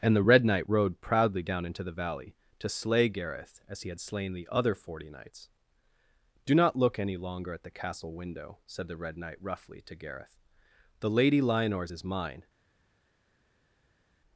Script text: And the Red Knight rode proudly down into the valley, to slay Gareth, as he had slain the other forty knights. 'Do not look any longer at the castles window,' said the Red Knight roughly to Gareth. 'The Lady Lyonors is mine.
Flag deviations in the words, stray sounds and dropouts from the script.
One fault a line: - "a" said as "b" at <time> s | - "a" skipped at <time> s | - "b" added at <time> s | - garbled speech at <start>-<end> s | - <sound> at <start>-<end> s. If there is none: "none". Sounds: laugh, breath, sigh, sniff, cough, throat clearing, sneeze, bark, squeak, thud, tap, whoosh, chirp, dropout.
- "castles" said as "castle" at 7.7 s